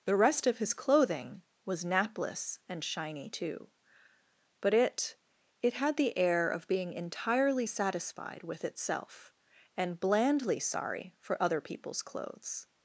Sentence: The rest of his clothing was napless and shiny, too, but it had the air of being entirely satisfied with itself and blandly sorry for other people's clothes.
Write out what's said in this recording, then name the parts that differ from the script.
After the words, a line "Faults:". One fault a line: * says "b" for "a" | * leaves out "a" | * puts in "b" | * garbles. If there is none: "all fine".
The rest of his clothing was napless and shiny, too, but it it had the air of being entirely satisfied with itself and blandly sorry for other people's clothes.
Faults:
* puts in "it"